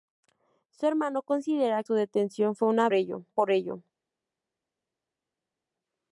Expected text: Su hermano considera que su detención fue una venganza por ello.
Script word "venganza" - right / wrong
wrong